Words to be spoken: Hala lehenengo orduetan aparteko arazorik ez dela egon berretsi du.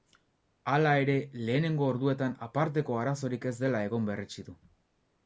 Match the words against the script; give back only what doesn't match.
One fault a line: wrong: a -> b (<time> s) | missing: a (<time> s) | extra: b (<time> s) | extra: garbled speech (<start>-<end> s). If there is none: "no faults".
extra: ere (1.0 s)